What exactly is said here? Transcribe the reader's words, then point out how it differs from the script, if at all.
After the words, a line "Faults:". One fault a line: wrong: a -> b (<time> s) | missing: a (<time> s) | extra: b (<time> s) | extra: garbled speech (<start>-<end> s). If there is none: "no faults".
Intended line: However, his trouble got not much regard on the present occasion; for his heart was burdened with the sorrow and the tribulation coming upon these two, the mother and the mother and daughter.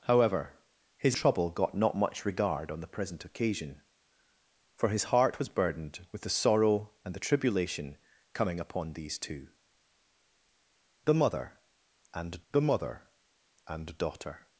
However, his trouble got not much regard on the present occasion; for his heart was burdened with the sorrow and the tribulation coming upon these two, the mother and the mother and daughter.
Faults:
no faults